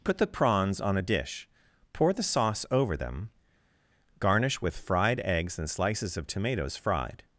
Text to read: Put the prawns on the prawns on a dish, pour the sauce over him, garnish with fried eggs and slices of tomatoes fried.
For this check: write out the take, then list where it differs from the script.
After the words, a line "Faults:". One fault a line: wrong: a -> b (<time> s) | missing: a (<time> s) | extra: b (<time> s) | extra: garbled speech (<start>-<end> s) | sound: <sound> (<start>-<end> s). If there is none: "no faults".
Put the prawns on a dish, pour the sauce over them, garnish with fried eggs and slices of tomatoes fried.
Faults:
missing: the prawns on (1.0 s)
wrong: him -> them (3.0 s)